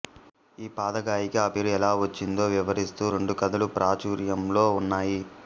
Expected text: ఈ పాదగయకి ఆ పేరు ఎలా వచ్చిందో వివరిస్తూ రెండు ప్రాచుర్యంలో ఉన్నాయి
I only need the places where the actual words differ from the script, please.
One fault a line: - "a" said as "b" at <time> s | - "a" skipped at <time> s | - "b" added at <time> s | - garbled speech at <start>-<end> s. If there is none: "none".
- "కథలు" added at 3.4 s